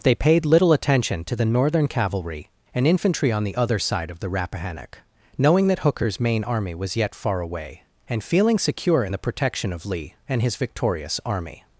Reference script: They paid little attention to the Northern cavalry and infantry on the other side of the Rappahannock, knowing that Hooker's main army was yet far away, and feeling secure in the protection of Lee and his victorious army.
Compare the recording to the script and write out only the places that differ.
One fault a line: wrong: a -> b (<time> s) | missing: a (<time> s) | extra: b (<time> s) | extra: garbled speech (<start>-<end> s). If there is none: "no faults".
no faults